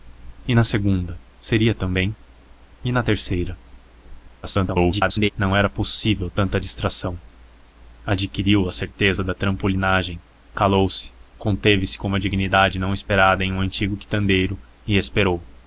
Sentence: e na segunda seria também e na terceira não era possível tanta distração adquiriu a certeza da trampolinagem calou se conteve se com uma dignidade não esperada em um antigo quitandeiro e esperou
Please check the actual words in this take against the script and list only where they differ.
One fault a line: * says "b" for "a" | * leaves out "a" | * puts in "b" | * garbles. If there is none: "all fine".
* garbles